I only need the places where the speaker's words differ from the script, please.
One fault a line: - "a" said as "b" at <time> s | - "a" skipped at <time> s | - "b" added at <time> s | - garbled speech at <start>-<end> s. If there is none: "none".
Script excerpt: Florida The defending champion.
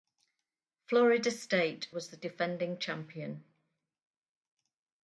- "State was" added at 1.3 s